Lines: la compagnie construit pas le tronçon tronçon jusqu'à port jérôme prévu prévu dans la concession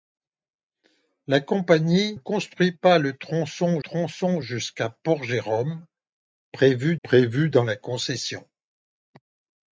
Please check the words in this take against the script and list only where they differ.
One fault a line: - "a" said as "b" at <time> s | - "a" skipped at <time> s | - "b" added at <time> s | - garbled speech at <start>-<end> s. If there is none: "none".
none